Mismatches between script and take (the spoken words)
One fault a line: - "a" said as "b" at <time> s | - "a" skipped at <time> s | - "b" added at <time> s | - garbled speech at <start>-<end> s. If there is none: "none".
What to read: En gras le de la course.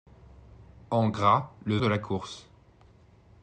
none